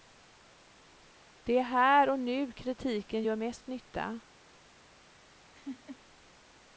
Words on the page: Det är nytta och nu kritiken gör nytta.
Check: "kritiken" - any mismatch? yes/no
no